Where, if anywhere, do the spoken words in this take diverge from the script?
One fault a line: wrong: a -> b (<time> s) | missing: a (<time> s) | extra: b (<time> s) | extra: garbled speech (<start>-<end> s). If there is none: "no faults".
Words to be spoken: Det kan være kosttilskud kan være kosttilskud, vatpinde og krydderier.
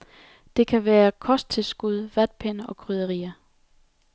missing: kan være kosttilskud (2.1 s)